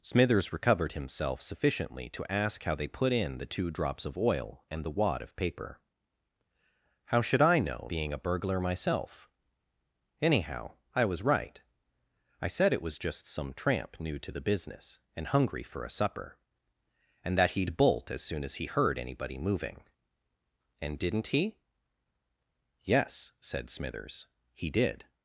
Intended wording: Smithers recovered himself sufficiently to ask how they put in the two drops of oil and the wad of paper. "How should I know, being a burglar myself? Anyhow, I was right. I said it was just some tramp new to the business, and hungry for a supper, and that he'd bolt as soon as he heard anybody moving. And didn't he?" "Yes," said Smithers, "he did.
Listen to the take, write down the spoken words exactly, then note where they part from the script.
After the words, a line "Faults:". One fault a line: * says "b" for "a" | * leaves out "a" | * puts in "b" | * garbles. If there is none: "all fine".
Smithers recovered himself sufficiently to ask how they put in the two drops of oil and the wad of paper. "How should I know, being a burglar myself? Anyhow, I was right. I said it was just some tramp new to the business, and hungry for a supper, and that he'd bolt as soon as he heard anybody moving. And didn't he?" "Yes," said Smithers, "he did.
Faults:
all fine